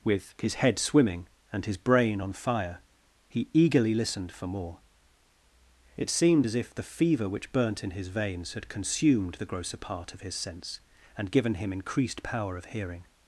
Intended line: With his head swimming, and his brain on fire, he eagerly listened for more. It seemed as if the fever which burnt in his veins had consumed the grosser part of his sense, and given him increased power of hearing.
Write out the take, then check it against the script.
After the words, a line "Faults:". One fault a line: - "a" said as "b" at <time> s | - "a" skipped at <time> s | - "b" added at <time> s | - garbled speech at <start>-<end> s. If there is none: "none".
With his head swimming, and his brain on fire, he eagerly listened for more. It seemed as if the fever which burnt in his veins had consumed the grosser part of his sense, and given him increased power of hearing.
Faults:
none